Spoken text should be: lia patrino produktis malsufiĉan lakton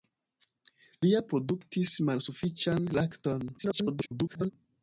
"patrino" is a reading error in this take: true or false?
true